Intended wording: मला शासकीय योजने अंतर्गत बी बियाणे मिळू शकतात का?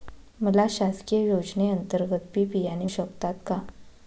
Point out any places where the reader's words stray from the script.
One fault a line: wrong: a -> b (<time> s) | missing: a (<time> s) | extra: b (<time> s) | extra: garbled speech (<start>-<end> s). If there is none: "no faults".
missing: मिळू (2.9 s)